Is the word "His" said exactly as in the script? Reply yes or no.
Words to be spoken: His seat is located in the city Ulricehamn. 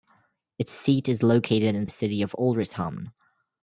no